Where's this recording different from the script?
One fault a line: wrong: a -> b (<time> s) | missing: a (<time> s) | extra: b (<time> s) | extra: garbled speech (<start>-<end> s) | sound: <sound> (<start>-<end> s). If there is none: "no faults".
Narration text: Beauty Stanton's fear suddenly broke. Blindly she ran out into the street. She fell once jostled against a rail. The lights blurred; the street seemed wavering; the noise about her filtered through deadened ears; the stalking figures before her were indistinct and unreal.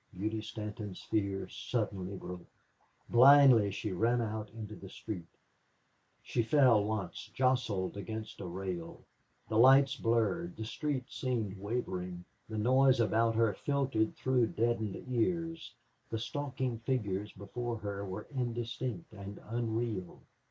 no faults